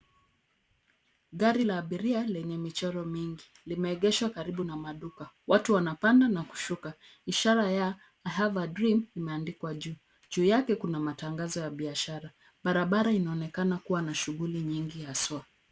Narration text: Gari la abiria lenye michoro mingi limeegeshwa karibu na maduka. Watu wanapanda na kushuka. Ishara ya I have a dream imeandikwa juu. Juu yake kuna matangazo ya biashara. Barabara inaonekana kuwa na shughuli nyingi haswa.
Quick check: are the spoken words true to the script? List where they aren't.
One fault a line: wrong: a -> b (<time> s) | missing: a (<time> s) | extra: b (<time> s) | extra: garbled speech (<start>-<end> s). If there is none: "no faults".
no faults